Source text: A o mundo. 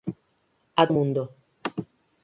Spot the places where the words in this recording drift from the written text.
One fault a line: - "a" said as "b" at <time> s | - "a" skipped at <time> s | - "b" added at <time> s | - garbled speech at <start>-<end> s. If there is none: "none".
none